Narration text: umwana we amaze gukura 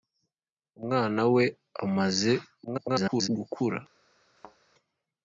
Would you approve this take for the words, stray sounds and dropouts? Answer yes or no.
no